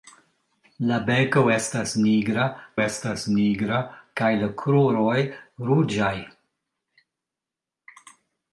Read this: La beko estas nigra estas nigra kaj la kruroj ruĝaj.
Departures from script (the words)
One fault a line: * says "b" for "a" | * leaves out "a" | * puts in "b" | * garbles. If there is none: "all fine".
all fine